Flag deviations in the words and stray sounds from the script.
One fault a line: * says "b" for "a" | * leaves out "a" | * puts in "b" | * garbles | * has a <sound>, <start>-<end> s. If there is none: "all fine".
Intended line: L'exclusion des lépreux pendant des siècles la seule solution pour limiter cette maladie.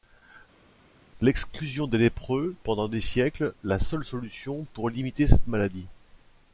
all fine